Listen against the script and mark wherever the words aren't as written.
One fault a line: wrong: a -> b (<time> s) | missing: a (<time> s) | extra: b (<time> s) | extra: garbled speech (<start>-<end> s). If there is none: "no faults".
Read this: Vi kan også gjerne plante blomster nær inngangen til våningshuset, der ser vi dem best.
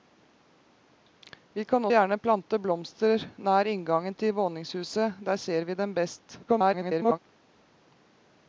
missing: også (1.9 s)
extra: garbled speech (6.5-7.2 s)